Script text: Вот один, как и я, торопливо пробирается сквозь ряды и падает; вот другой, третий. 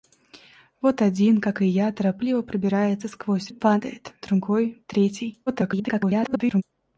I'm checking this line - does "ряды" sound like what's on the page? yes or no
no